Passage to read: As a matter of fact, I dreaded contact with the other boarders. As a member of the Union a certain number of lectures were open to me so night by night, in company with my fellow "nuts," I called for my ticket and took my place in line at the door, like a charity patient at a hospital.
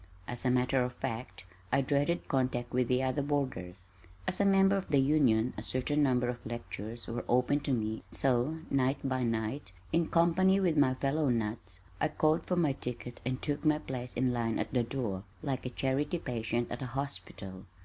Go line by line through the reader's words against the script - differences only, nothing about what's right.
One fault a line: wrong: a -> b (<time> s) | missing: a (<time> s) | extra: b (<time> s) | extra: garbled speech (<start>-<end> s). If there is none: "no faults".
no faults